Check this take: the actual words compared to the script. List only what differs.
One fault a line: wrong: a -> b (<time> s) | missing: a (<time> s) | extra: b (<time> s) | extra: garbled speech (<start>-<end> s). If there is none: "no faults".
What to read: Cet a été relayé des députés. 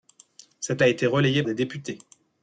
no faults